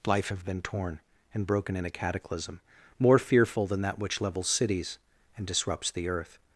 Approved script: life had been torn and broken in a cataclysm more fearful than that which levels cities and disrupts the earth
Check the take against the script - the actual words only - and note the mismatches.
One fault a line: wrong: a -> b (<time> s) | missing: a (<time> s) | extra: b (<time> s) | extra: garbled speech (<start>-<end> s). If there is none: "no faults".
wrong: had -> have (0.3 s)